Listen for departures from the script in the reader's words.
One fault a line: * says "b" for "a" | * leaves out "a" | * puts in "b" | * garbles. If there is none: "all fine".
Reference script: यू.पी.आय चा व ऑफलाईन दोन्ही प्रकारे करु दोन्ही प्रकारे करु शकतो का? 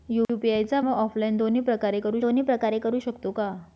all fine